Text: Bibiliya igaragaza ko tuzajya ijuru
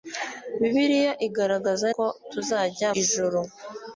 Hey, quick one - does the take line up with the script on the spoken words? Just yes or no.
yes